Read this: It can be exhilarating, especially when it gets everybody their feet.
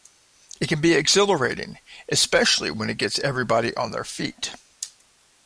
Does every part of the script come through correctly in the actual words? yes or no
no